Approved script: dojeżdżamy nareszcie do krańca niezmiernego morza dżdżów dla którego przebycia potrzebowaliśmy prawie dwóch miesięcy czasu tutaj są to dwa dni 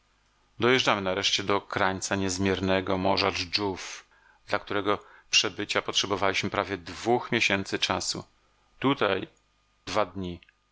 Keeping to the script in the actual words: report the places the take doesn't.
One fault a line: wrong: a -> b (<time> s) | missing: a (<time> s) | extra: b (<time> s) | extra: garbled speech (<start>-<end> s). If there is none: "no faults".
missing: są to (9.3 s)